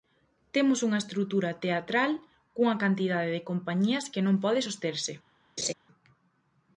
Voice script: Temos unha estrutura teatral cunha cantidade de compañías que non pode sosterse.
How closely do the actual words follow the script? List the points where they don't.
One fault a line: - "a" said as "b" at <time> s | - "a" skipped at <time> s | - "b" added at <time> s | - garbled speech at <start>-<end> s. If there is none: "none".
none